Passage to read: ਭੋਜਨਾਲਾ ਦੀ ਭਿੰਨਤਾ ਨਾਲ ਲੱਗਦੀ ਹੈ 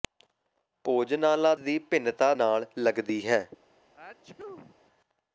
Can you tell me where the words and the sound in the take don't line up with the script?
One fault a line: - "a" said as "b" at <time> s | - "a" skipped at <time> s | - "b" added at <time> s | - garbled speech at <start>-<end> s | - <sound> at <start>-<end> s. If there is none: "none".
- sneeze at 3.9-4.8 s